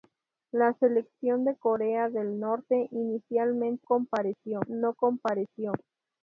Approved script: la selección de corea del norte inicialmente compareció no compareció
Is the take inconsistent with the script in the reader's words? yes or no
no